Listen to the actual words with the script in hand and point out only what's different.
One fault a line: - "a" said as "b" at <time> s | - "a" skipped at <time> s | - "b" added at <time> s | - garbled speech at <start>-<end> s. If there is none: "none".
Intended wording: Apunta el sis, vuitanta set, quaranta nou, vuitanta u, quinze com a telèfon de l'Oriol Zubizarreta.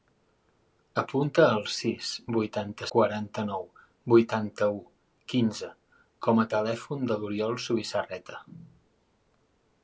- "set" skipped at 2.9 s